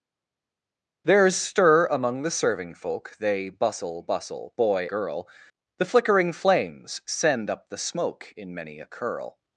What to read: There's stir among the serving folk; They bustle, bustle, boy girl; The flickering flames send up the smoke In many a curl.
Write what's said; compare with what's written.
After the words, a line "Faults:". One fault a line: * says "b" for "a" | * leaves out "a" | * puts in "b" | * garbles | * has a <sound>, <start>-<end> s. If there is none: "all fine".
There's stir among the serving folk; They bustle, bustle, boy girl; The flickering flames send up the smoke In many a curl.
Faults:
all fine